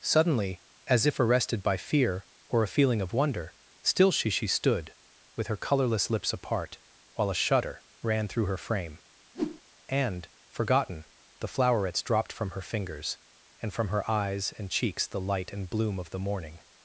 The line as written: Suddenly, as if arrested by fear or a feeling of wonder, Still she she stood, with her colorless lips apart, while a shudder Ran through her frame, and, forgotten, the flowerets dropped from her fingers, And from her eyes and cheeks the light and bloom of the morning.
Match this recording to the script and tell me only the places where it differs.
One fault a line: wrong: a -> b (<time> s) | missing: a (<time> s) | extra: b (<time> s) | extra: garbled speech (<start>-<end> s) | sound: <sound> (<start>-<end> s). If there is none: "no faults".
sound: whoosh (9.3-9.6 s)